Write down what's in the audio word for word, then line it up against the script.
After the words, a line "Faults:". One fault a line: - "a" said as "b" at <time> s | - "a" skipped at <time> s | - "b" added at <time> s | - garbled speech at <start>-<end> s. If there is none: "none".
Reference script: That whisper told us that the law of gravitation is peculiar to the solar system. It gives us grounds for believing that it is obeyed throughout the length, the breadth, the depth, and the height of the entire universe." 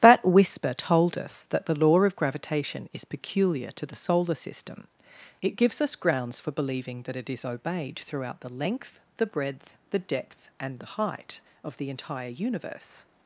That whisper told us that the law of gravitation is peculiar to the solar system. It gives us grounds for believing that it is obeyed throughout the length, the breadth, the depth, and the height of the entire universe."
Faults:
none